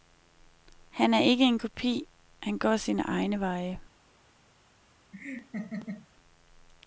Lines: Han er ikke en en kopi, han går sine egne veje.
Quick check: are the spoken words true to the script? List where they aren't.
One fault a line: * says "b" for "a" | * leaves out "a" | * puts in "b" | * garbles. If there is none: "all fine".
* leaves out "en"